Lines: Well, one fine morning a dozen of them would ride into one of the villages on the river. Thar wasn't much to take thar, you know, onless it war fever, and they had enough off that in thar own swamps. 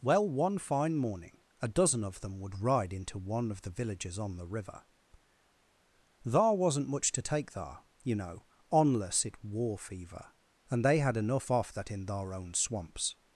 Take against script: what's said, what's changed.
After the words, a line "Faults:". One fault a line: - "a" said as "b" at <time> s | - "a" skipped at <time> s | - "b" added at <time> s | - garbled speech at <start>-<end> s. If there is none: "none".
Well, one fine morning a dozen of them would ride into one of the villages on the river. Thar wasn't much to take thar, you know, onless it war fever, and they had enough off that in thar own swamps.
Faults:
none